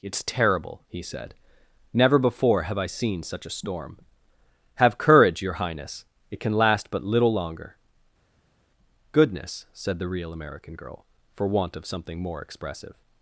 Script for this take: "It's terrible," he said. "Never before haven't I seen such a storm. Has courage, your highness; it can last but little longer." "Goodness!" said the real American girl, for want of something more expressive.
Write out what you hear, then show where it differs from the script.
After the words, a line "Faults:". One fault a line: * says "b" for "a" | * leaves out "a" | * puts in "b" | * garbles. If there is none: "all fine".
"It's terrible," he said. "Never before have I seen such a storm. Have courage, your highness; it can last but little longer." "Goodness!" said the real American girl, for want of something more expressive.
Faults:
* says "have" for "haven't"
* says "Have" for "Has"